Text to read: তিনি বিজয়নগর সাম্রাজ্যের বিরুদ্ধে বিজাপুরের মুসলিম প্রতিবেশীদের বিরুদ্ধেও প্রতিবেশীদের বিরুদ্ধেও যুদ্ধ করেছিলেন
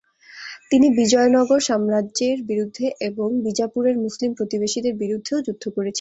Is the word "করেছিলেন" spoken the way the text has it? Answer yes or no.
yes